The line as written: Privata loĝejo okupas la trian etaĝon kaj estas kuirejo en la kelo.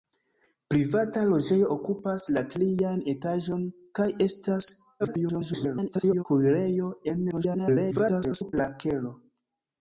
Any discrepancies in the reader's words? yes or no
yes